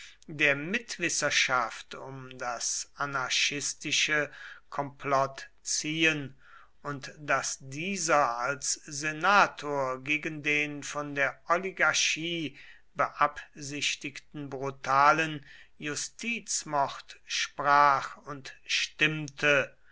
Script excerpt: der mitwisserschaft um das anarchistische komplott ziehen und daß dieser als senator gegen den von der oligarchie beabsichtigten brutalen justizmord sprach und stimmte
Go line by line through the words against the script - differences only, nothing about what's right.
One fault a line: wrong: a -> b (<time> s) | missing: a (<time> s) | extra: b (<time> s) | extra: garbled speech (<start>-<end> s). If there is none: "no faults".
no faults